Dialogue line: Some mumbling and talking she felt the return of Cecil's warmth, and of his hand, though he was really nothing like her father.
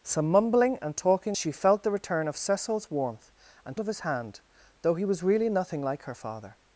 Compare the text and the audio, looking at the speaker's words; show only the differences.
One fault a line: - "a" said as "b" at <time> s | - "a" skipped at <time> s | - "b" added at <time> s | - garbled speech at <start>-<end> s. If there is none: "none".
none